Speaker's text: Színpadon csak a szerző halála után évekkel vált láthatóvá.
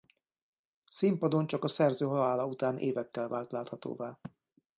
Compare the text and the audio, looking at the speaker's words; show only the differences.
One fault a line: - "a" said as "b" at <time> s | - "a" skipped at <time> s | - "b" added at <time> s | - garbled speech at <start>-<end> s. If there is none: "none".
none